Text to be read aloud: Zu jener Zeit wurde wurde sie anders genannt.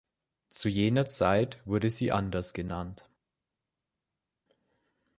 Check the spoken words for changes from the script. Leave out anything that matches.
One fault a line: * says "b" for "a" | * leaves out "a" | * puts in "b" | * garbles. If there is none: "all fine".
* leaves out "wurde"